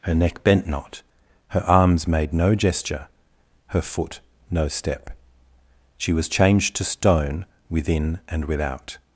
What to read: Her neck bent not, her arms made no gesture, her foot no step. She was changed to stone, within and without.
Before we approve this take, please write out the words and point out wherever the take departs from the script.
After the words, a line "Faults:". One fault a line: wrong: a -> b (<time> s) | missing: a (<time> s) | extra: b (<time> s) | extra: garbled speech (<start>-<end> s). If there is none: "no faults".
Her neck bent not, her arms made no gesture, her foot no step. She was changed to stone, within and without.
Faults:
no faults